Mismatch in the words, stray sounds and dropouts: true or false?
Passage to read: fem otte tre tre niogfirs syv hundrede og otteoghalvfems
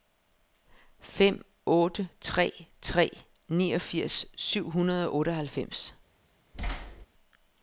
true